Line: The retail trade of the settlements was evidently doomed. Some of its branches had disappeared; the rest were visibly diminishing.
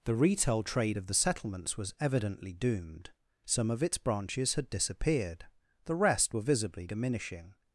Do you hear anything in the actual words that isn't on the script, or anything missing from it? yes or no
no